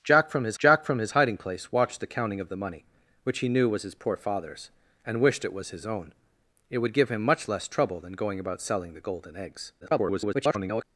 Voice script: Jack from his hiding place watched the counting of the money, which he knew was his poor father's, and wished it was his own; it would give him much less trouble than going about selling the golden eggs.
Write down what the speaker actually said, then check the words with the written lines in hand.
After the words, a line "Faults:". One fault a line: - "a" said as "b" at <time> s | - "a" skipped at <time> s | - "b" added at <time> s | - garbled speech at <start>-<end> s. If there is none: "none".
Jack from his jack from his hiding place watched the counting of the money, which he knew was his poor father's, and wished it was his own; it would give him much less trouble than going about selling the golden eggs. [garbled]
Faults:
- "jack from his" added at 0.6 s
- garbled speech at 9.8-10.8 s